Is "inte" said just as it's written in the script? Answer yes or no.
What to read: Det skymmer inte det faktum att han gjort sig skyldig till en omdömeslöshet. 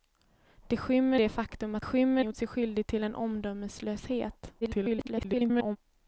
no